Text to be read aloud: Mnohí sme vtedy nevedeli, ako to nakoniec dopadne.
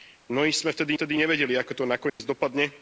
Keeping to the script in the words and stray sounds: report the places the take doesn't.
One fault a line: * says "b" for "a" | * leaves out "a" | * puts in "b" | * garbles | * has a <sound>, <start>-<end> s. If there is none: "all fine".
* puts in "vtedy"
* has a dropout, 2.1-2.2 s